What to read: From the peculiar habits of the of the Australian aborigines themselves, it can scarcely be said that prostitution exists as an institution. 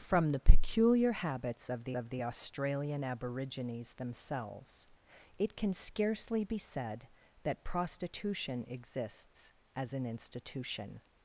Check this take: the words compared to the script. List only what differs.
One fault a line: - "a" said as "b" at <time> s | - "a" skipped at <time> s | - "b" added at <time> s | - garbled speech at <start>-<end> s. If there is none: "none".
none